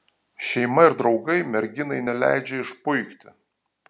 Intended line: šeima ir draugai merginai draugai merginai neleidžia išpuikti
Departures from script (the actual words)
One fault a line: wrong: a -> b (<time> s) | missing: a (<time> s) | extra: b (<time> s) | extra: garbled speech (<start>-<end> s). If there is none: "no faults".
missing: draugai merginai (2.0 s)